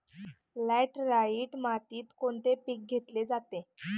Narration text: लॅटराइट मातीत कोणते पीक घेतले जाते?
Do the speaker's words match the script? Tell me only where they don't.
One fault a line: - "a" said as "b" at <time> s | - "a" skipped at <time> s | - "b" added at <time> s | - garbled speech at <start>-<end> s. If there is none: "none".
none